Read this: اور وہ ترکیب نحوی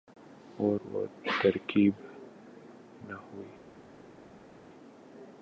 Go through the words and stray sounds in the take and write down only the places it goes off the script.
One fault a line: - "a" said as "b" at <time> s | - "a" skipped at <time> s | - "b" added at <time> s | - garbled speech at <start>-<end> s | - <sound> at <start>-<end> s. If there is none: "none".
none